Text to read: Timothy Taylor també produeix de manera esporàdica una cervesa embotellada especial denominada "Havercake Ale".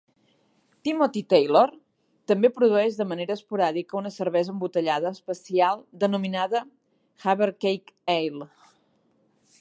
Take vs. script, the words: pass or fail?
pass